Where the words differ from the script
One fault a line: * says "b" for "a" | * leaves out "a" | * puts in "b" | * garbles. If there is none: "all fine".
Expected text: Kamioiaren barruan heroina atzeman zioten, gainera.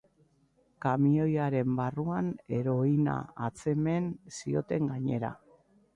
all fine